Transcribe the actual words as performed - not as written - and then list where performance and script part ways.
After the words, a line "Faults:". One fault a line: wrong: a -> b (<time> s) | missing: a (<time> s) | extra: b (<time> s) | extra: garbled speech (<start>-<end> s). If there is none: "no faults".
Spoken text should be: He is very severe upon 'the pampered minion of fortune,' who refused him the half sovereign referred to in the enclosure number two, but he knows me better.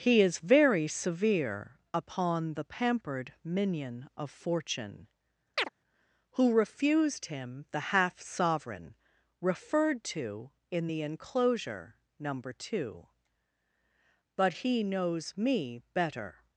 He is very severe upon 'the pampered minion of fortune,' who refused him the half sovereign referred to in the enclosure number two, but he knows me better.
Faults:
no faults